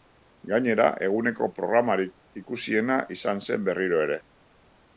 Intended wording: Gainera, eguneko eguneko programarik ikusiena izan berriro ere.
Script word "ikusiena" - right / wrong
right